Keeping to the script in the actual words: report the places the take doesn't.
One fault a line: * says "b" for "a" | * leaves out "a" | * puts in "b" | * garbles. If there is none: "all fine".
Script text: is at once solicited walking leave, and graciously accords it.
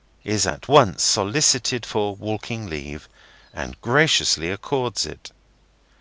* puts in "for"